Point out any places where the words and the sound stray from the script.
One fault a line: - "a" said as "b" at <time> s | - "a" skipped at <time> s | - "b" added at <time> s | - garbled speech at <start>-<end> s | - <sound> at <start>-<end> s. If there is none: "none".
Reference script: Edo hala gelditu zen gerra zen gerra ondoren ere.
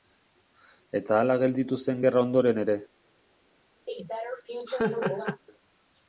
- "Edo" said as "Eta" at 1.0 s
- "zen gerra" skipped at 2.2 s
- laugh at 3.9-5.4 s